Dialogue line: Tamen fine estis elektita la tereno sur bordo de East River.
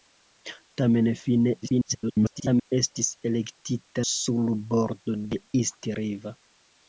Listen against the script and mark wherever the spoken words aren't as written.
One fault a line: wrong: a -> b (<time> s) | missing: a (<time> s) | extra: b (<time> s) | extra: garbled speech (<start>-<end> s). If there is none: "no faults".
extra: garbled speech (1.6-2.7 s)
missing: la tereno (4.0 s)